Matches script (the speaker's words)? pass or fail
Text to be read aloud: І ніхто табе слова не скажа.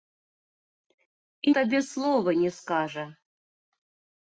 fail